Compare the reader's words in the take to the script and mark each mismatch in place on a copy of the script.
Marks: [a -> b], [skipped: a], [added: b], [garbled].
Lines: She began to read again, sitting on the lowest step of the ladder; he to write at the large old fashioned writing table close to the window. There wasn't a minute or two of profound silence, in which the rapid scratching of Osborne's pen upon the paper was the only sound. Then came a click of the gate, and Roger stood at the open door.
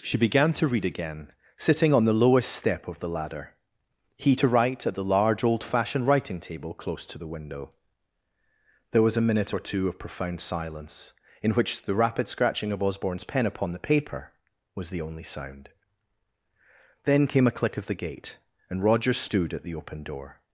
She began to read again, sitting on the lowest step of the ladder; he to write at the large old fashioned writing table close to the window. There [wasn't -> was] a minute or two of profound silence, in which the rapid scratching of Osborne's pen upon the paper was the only sound. Then came a click of the gate, and Roger stood at the open door.